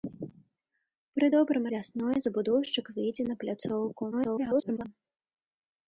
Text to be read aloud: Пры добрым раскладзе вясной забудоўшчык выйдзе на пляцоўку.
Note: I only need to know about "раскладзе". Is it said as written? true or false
false